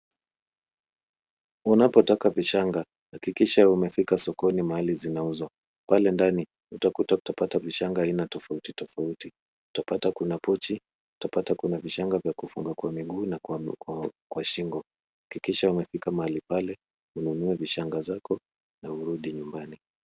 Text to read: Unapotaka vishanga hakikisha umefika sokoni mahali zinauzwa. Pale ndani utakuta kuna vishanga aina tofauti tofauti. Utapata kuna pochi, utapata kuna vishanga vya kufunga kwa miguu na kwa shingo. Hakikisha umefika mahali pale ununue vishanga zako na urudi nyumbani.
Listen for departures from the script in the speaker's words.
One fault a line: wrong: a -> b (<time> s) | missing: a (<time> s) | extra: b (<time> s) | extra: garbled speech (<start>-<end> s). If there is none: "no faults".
wrong: kuna -> utapata (7.2 s)